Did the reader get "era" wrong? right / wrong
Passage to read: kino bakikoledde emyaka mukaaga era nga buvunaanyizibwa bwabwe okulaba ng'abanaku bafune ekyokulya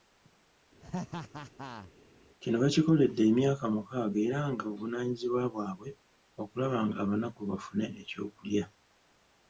right